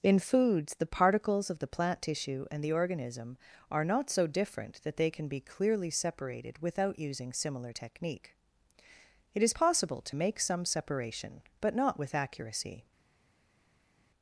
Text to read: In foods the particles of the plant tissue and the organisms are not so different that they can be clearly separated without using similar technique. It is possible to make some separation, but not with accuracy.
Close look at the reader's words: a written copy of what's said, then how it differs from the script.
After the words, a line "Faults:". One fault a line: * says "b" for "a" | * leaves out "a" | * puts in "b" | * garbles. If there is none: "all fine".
In foods the particles of the plant tissue and the organism are not so different that they can be clearly separated without using similar technique. It is possible to make some separation, but not with accuracy.
Faults:
* says "organism" for "organisms"